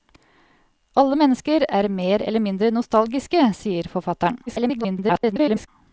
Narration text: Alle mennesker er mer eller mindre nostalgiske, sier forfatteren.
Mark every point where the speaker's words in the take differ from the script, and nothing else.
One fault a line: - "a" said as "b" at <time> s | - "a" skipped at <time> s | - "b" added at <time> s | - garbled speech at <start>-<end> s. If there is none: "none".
- garbled speech at 4.5-5.7 s